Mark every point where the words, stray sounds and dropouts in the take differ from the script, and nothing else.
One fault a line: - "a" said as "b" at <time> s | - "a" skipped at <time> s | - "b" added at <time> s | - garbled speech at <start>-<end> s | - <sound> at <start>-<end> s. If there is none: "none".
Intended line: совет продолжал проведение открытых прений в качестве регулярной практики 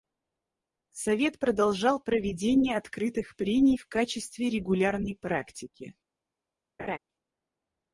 - laugh at 6.8-7.0 s